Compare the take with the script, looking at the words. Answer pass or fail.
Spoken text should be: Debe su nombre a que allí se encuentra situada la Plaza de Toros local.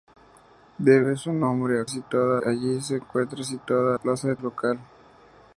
fail